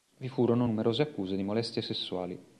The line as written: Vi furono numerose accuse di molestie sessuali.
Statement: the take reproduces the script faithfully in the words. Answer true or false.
true